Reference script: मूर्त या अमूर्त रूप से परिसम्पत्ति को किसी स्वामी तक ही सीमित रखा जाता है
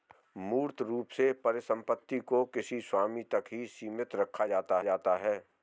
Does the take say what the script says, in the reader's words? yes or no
no